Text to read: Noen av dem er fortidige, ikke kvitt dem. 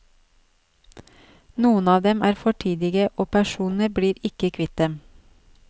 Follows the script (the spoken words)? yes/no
no